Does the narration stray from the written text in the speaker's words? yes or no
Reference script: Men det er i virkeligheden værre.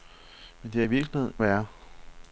no